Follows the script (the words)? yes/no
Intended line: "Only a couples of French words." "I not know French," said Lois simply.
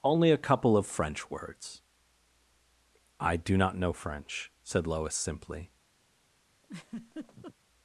no